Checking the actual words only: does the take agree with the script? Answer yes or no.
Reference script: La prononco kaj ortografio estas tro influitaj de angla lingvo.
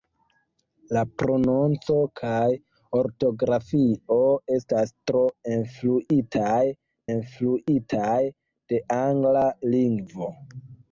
no